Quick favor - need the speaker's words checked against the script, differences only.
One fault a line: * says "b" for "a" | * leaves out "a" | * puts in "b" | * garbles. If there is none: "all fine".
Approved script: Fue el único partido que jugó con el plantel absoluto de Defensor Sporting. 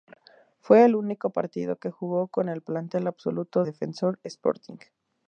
* leaves out "de"